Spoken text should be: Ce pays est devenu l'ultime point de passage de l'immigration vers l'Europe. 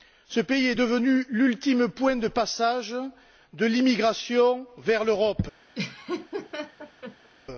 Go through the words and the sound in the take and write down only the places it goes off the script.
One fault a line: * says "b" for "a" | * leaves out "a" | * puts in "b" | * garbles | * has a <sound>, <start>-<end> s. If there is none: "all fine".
* has a laugh, 5.7-7.3 s